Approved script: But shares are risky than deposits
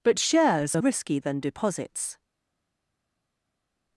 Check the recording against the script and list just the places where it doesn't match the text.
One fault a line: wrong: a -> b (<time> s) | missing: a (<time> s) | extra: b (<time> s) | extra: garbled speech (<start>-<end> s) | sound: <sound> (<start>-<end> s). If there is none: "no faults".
no faults